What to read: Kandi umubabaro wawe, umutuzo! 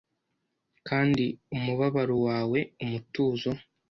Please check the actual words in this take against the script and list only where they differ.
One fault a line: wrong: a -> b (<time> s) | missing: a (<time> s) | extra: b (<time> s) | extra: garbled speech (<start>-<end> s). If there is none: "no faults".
no faults